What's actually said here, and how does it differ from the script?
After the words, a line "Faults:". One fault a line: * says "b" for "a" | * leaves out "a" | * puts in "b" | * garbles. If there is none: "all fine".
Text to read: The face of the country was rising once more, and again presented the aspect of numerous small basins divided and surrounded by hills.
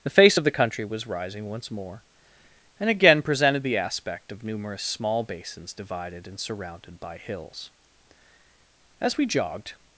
The face of the country was rising once more, and again presented the aspect of numerous small basins divided and surrounded by hills. As we jogged
Faults:
* puts in "As we jogged"